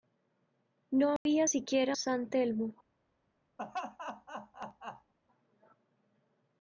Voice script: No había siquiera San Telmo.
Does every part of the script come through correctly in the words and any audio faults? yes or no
no